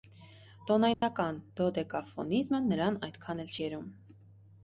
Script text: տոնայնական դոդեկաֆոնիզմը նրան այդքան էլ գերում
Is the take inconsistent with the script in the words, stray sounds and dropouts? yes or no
yes